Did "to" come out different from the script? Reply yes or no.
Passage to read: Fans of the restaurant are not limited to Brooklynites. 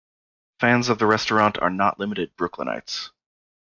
yes